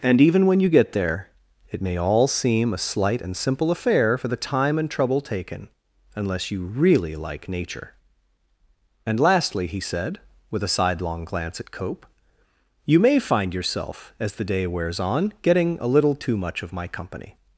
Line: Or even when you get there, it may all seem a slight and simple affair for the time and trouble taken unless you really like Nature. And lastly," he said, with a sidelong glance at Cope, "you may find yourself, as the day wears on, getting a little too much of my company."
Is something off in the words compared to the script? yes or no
yes